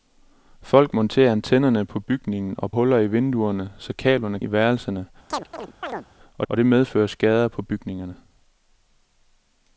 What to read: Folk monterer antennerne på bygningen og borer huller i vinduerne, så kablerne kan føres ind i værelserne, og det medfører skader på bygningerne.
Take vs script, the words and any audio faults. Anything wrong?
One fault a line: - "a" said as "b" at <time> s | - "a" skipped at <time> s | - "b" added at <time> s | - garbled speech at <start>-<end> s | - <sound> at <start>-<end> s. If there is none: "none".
- "borer" skipped at 2.7 s
- "kan føres ind" skipped at 4.4 s
- chirp at 5.3-6.1 s
- "og" added at 6.5 s